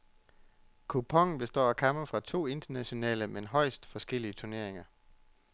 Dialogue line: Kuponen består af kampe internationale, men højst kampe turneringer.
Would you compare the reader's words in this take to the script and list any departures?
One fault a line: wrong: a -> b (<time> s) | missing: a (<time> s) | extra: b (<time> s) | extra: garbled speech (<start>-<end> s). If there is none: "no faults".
extra: fra to (2.1 s)
wrong: kampe -> forskellige (3.8 s)